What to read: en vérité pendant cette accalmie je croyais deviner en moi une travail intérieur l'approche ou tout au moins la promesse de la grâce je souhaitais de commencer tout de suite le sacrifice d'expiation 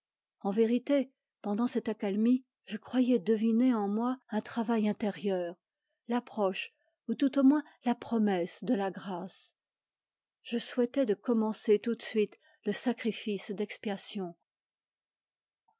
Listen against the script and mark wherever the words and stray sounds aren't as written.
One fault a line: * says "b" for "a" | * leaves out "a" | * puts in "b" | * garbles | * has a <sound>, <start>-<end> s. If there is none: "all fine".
* says "un" for "une"